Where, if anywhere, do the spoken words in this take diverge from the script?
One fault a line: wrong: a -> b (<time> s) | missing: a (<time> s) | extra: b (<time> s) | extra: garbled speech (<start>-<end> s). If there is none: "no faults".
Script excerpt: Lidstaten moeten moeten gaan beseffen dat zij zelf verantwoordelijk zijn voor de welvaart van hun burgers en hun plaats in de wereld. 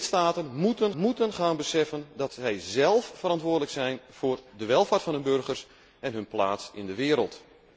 no faults